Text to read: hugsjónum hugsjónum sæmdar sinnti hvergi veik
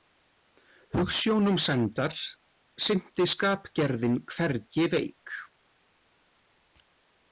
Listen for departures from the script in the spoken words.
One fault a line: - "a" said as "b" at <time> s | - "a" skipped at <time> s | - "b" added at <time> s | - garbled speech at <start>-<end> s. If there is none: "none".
- "hugsjónum" skipped at 1.6 s
- "skapgerðin" added at 3.4 s